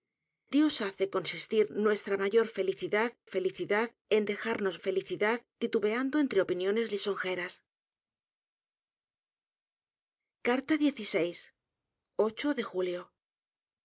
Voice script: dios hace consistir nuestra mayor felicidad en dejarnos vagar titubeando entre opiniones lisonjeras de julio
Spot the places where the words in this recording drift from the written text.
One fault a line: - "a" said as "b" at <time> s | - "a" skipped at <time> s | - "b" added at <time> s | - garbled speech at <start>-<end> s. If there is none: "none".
- "felicidad" added at 3.2 s
- "vagar" said as "felicidad" at 4.8 s